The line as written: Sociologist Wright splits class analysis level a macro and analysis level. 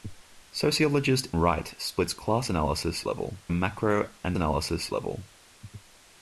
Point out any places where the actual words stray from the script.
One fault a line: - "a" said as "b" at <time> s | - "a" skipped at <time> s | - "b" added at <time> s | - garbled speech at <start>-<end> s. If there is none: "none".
none